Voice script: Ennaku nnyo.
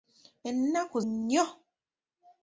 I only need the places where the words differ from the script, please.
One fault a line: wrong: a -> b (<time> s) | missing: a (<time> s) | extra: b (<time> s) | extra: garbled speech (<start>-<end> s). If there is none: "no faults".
no faults